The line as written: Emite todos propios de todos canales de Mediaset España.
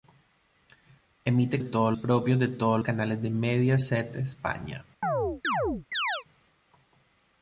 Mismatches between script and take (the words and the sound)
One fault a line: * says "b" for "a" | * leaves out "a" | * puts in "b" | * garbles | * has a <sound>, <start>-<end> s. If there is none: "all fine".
* has a chirp, 5.0-6.2 s